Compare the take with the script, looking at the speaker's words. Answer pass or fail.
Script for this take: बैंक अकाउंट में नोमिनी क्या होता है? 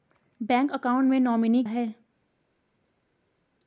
fail